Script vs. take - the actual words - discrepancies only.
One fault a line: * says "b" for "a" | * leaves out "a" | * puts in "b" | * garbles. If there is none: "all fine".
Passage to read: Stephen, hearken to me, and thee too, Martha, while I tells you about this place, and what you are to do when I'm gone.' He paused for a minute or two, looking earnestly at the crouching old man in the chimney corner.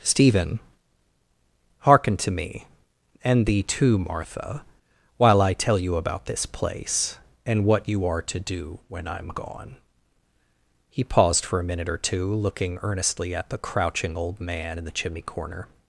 * says "tell" for "tells"